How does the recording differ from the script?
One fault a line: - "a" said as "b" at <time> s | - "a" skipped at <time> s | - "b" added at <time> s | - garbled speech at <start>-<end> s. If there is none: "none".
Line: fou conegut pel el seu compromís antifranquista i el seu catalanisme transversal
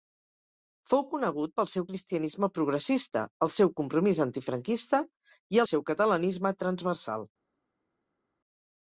- "seu cristianisme progressista" added at 1.7 s